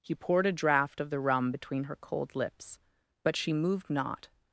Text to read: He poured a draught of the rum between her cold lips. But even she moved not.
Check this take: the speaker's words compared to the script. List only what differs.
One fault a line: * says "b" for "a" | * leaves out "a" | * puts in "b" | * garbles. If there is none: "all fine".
* leaves out "even"